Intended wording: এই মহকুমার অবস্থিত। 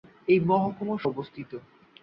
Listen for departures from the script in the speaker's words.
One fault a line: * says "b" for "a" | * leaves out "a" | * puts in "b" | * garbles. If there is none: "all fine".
all fine